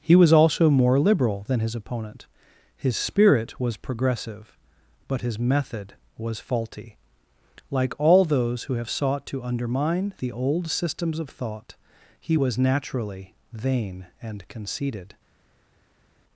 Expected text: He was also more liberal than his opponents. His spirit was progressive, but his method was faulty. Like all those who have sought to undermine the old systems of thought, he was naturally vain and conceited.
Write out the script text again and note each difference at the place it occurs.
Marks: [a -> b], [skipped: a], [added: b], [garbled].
He was also more liberal than his [opponents. -> opponent] His spirit was progressive, but his method was faulty. Like all those who have sought to undermine the old systems of thought, he was naturally vain and conceited.